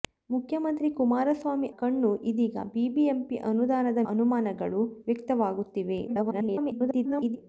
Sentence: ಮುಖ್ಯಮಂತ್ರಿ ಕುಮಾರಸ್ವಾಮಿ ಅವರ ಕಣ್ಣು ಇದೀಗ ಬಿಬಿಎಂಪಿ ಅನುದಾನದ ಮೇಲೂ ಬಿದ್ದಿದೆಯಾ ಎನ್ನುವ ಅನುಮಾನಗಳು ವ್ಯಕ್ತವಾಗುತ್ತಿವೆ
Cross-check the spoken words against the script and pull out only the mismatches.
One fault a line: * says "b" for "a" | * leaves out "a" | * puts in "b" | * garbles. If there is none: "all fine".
* leaves out "ಅವರ"
* leaves out "ಮೇಲೂ ಬಿದ್ದಿದೆಯಾ ಎನ್ನುವ"
* garbles